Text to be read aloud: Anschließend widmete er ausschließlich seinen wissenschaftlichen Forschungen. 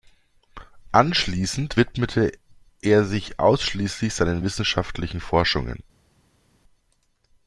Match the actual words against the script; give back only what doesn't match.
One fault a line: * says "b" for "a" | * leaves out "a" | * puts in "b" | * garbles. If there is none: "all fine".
* puts in "sich"